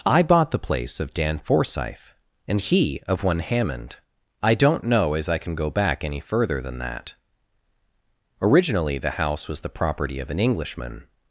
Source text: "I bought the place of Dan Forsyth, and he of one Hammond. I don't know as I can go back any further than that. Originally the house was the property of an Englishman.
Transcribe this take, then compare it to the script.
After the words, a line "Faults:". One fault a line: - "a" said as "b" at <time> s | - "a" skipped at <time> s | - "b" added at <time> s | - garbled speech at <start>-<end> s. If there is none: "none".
"I bought the place of Dan Forsyth, and he of one Hammond. I don't know as I can go back any further than that. Originally the house was the property of an Englishman.
Faults:
none